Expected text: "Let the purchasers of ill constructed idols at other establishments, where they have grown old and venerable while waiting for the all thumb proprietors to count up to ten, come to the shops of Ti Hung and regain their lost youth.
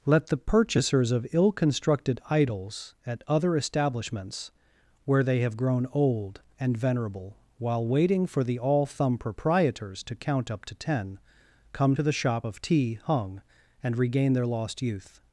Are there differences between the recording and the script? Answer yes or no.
yes